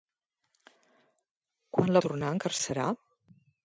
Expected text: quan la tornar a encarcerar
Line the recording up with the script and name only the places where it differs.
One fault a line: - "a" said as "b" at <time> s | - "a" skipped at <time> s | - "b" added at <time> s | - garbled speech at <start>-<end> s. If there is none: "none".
none